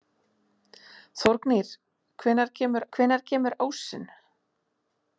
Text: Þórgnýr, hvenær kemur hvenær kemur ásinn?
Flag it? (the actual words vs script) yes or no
no